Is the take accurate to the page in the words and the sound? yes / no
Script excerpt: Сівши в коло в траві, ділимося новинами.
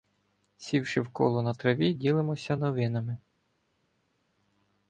no